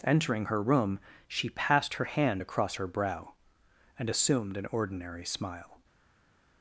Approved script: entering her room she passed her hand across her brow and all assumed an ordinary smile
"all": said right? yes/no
no